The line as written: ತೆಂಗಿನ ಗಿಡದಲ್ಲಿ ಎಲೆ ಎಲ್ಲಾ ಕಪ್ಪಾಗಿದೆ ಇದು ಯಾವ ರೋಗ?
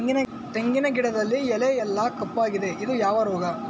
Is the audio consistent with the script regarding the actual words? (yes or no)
yes